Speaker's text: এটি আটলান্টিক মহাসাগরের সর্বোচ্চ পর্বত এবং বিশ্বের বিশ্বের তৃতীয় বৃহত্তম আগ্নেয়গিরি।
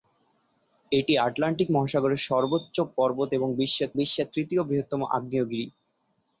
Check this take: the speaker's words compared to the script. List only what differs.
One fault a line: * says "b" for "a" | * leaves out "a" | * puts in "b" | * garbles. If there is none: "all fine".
all fine